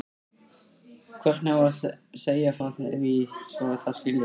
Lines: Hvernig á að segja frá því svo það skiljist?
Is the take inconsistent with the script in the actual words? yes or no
no